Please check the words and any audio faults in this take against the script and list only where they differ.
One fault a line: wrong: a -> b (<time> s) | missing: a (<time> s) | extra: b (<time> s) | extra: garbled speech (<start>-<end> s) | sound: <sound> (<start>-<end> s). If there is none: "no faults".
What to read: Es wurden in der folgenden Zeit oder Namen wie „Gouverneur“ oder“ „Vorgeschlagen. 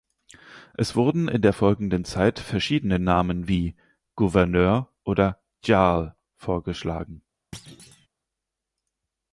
wrong: oder -> verschiedene (2.4 s)
extra: Jarl (5.6 s)
sound: thud (7.5-8.1 s)